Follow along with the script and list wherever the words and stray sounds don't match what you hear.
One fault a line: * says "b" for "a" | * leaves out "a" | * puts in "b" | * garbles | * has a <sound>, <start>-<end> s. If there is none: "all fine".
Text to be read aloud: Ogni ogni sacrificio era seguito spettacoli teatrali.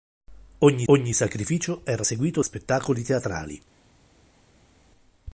all fine